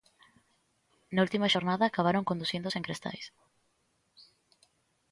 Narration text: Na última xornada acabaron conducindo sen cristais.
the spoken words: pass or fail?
pass